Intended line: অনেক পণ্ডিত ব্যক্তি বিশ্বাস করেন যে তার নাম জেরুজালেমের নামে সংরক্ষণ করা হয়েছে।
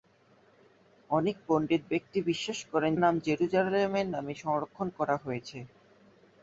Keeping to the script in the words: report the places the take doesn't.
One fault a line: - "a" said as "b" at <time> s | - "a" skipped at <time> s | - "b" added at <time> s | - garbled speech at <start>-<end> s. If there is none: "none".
- "যে তার" skipped at 2.9 s